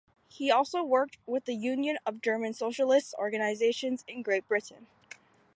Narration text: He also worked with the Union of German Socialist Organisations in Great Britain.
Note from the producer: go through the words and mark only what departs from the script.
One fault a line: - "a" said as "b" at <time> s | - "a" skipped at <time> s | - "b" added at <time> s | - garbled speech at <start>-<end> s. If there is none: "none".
none